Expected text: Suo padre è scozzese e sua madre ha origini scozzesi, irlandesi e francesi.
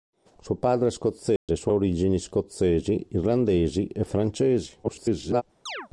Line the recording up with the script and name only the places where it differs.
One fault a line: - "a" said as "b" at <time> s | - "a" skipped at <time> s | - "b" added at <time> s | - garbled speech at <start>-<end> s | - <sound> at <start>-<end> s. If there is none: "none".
- dropout at 1.4-1.5 s
- "madre" skipped at 1.7 s
- garbled speech at 4.8-5.4 s
- chirp at 5.7-5.9 s